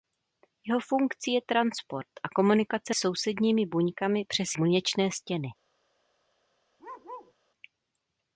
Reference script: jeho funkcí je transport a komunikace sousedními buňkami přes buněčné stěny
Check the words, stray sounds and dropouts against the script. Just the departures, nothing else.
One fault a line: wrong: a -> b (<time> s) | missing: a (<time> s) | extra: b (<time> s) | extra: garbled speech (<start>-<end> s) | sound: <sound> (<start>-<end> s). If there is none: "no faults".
sound: bark (6.8-7.3 s)